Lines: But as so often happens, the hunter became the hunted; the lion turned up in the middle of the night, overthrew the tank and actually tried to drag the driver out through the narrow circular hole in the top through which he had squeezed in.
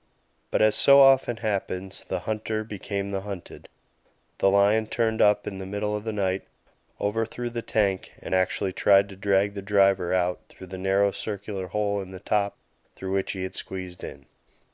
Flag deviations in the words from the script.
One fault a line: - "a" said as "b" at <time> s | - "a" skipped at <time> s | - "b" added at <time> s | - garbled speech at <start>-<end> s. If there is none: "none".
none